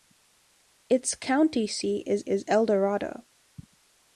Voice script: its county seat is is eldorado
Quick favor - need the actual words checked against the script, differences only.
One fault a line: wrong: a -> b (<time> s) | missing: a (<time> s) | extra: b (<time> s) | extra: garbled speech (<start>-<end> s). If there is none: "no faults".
no faults